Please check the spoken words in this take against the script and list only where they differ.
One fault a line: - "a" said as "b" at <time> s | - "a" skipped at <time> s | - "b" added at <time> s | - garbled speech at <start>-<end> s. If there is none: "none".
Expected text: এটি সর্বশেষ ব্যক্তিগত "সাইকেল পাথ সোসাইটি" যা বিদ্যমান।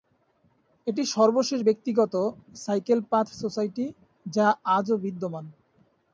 - "আজও" added at 4.8 s